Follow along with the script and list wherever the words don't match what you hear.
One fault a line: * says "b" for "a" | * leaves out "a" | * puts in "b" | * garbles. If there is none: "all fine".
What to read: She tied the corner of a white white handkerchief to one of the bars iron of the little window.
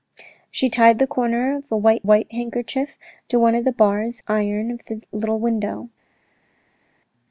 all fine